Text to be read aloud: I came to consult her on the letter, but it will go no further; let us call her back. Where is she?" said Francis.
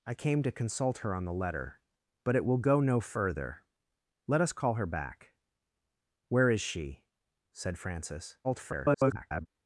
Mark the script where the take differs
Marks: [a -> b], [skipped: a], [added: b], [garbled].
I came to consult her on the letter, but it will go no further; let us call her back. Where is she?" said Francis. [garbled]